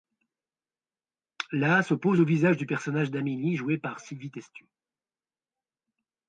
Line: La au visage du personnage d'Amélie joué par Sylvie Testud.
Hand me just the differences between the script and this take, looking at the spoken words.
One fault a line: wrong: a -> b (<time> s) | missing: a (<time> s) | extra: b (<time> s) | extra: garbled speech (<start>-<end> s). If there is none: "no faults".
extra: s'oppose (1.8 s)